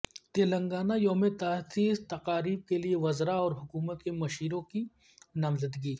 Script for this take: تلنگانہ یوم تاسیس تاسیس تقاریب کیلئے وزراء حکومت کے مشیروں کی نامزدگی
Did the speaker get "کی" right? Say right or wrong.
right